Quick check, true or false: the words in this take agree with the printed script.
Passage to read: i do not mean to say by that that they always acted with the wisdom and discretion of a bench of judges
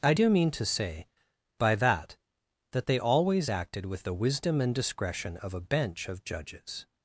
false